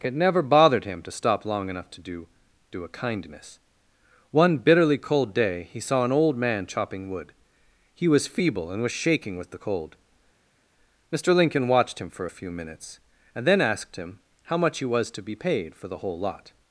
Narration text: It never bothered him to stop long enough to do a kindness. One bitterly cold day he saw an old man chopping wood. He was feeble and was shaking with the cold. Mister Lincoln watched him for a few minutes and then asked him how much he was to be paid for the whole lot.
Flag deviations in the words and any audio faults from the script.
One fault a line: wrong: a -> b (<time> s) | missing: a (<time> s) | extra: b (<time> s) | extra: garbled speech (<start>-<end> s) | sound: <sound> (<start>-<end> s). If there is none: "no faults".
extra: do (2.7 s)